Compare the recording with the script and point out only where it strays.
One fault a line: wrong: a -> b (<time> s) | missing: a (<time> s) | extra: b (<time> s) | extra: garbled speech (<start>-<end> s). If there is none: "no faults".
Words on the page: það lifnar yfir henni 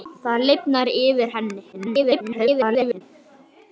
extra: garbled speech (1.7-3.0 s)